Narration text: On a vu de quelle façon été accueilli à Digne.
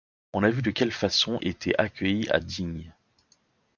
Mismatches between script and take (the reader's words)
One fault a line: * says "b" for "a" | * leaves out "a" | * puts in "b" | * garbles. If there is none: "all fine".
all fine